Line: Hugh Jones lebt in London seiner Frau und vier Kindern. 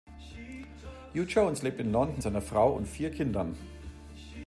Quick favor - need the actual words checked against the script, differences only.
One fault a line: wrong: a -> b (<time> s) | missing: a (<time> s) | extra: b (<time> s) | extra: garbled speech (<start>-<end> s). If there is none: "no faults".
no faults